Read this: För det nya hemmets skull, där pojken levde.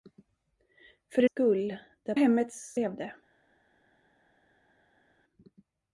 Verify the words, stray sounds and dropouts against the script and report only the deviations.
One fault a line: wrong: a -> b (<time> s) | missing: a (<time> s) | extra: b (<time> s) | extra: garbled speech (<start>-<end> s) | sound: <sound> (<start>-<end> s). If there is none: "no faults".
missing: nya hemmets (1.3 s)
wrong: pojken -> hemmets (2.1 s)